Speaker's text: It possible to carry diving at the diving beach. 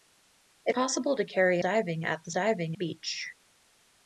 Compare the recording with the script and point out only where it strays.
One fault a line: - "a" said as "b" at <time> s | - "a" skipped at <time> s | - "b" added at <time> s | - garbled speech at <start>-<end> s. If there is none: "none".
none